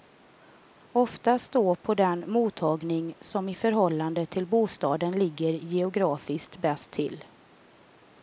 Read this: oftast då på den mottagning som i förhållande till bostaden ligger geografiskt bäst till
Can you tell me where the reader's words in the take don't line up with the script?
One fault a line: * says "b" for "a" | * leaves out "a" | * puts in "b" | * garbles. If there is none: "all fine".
all fine